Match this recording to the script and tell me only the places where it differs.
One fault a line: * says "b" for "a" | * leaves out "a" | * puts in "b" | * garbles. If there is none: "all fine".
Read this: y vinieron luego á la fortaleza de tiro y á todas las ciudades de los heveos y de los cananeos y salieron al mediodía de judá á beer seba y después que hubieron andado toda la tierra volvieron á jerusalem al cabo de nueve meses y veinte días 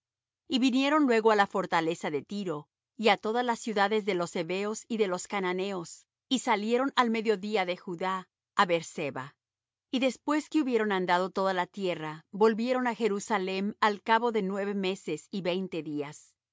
all fine